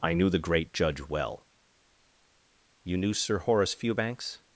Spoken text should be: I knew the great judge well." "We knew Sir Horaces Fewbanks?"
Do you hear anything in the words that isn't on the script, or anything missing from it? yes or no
yes